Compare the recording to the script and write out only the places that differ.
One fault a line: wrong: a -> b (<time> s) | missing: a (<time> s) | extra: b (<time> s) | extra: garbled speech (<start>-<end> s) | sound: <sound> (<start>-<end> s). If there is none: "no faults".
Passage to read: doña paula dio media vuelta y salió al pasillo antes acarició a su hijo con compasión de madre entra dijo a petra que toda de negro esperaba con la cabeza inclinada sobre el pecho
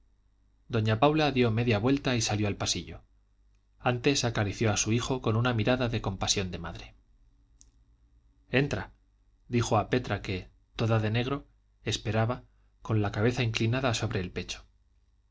extra: una mirada de (5.3 s)